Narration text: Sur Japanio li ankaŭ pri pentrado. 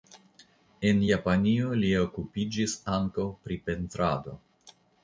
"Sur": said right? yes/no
no